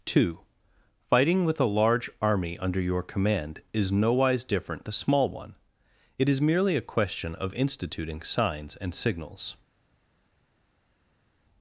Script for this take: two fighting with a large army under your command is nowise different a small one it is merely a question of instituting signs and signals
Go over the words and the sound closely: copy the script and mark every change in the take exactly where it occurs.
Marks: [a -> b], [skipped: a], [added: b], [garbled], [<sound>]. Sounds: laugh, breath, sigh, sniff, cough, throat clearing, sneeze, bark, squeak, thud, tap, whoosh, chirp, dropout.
two fighting with a large army under your command is nowise different a small one it is merely a question of instituting signs and signals